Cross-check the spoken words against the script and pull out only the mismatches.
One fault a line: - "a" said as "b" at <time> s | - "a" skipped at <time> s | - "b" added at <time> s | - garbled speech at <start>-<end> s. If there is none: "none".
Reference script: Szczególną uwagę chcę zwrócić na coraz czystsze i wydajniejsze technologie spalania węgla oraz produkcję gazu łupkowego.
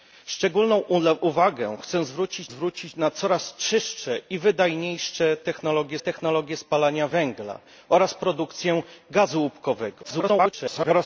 - "zwrócić" added at 2.5 s
- "technologie" added at 6.0 s
- garbled speech at 10.0-11.1 s